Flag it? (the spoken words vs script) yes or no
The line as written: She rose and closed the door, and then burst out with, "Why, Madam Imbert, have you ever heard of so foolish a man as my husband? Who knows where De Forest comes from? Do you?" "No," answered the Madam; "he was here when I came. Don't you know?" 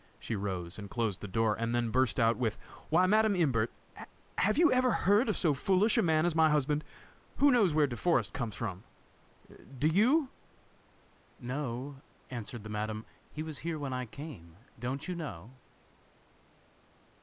no